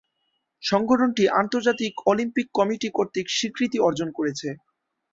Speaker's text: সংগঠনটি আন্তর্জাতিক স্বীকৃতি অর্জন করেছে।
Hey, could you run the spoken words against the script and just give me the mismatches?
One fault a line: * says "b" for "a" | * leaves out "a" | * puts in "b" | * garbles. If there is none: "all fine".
* puts in "অলিম্পিক কমিটি কর্তৃক"